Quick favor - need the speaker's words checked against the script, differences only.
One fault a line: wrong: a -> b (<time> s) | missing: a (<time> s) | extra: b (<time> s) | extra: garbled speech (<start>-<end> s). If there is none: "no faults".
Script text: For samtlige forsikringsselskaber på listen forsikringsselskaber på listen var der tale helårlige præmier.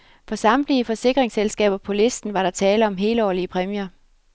missing: forsikringsselskaber på listen (2.3 s)
extra: om (2.9 s)